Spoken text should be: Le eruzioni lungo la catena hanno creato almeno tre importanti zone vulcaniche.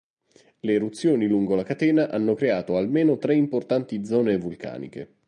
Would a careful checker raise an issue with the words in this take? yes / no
no